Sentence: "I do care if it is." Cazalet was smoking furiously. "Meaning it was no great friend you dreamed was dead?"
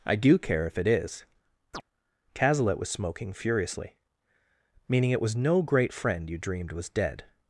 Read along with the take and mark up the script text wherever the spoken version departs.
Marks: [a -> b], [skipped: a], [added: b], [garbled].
"I do care if it is." Cazalet was smoking furiously. "Meaning it was no great friend you dreamed was dead?"